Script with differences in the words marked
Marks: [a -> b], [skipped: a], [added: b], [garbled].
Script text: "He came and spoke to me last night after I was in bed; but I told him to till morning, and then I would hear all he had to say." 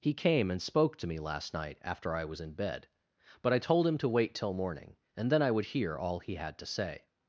"He came and spoke to me last night after I was in bed; but I told him to [added: wait] till morning, and then I would hear all he had to say."